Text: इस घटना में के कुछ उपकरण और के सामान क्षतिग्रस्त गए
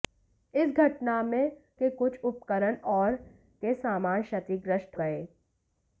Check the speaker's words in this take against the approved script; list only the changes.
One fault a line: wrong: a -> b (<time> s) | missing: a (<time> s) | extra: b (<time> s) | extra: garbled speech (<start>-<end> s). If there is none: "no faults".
no faults